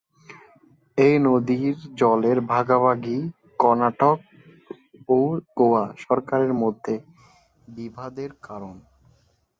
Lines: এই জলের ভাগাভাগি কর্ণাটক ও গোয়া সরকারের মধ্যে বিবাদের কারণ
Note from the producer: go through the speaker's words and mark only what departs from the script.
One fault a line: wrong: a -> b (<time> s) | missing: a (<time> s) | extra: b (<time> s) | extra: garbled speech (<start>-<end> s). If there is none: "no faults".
extra: নদীর (1.2 s)